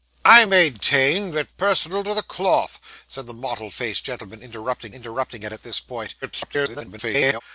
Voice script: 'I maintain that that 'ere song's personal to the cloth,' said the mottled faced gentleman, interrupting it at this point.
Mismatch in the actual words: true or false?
true